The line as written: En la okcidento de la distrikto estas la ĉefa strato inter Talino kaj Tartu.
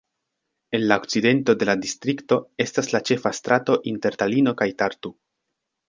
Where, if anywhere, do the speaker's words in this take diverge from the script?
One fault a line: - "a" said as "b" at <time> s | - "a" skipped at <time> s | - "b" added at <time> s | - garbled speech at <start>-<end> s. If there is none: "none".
none